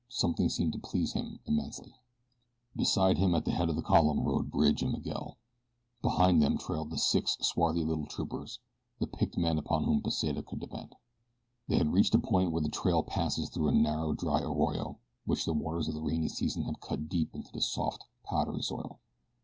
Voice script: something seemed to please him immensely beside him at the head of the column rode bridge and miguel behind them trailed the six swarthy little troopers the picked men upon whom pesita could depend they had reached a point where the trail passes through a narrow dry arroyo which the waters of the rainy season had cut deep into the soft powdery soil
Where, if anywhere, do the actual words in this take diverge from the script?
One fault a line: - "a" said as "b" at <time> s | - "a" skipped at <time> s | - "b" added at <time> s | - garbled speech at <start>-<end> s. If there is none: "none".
none